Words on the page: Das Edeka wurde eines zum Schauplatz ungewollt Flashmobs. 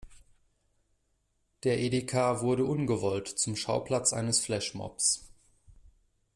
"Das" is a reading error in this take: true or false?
true